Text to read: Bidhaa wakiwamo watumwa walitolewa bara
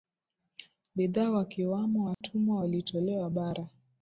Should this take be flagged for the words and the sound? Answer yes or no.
yes